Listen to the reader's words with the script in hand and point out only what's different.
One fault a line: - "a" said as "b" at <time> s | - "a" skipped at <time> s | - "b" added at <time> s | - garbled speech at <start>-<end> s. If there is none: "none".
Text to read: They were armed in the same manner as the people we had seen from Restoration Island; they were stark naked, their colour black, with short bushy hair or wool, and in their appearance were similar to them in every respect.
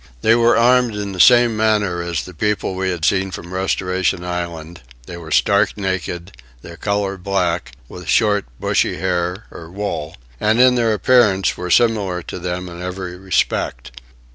none